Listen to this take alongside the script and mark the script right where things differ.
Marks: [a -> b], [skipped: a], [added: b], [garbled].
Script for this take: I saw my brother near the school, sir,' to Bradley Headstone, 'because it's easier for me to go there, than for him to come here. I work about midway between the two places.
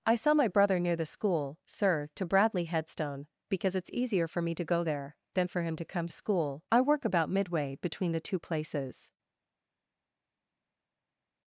I saw my brother near the school, sir,' to Bradley Headstone, 'because it's easier for me to go there, than for him to come [here. -> school] I work about midway between the two places.